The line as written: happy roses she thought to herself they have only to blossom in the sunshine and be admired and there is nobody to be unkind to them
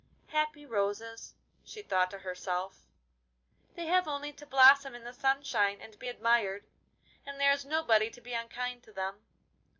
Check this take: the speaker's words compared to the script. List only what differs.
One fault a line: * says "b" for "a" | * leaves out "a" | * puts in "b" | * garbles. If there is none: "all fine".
all fine